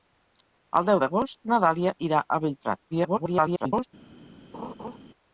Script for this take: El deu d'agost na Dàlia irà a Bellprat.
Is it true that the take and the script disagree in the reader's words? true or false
true